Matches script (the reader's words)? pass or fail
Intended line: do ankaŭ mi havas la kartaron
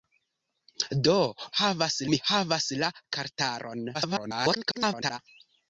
fail